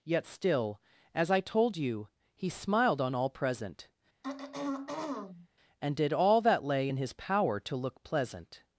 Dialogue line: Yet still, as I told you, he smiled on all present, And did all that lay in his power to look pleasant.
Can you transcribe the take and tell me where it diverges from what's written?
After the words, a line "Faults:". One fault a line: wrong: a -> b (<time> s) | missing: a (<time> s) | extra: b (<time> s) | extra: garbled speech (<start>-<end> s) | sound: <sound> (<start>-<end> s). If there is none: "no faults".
Yet still, as I told you, he smiled on all present, And did all that lay in his power to look pleasant.
Faults:
sound: throat clearing (4.2-5.5 s)